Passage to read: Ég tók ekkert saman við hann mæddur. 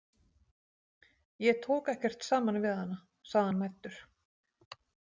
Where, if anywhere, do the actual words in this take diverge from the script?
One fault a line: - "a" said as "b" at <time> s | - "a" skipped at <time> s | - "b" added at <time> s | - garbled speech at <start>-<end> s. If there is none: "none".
- "hana sagði" added at 2.8 s